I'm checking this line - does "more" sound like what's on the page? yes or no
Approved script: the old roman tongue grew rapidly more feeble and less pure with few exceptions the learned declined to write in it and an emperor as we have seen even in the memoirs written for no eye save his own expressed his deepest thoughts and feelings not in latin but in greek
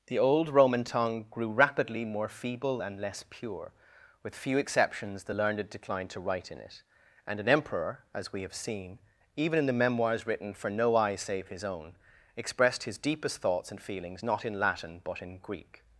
yes